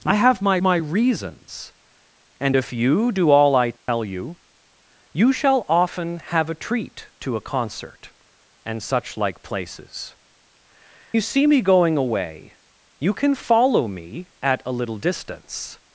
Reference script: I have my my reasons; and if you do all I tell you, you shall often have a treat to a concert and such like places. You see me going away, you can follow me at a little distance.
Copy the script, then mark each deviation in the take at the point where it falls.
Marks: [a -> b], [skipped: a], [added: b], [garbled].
I have my my reasons; and if you do all I tell you, you shall often have a treat to a concert and such like places. You see me going away, you can follow me at a little distance.